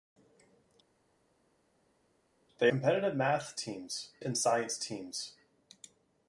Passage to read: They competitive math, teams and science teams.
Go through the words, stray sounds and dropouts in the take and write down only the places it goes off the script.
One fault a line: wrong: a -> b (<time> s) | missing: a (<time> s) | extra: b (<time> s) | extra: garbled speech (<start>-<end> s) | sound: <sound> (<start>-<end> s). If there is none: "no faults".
no faults